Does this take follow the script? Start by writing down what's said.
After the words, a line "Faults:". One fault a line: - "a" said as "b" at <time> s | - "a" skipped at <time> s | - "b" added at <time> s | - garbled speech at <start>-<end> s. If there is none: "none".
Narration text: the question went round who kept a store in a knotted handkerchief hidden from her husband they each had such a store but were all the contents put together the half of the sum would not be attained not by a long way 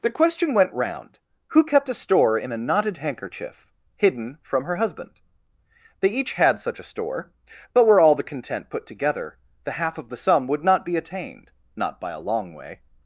the question went round who kept a store in a knotted handkerchief hidden from her husband they each had such a store but were all the content put together the half of the sum would not be attained not by a long way
Faults:
- "contents" said as "content" at 8.2 s